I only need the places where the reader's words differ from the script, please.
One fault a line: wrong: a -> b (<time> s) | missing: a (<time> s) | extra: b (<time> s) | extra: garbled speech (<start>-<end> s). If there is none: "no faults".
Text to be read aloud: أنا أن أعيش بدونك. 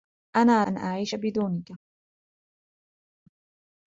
no faults